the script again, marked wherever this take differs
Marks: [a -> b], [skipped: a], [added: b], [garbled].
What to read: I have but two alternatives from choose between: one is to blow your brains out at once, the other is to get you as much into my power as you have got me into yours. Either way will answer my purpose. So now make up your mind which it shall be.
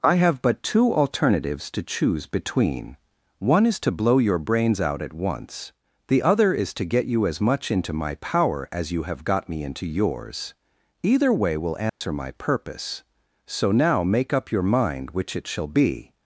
I have but two alternatives [from -> to] choose between: one is to blow your brains out at once, the other is to get you as much into my power as you have got me into yours. Either way will answer my purpose. So now make up your mind which it shall be.